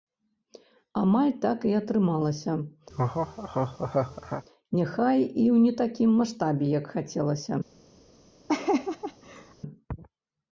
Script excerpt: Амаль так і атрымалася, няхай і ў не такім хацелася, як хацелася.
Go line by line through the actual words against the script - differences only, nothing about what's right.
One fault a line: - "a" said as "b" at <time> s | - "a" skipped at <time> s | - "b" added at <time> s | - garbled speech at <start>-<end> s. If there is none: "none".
- "хацелася" said as "маштабе" at 6.2 s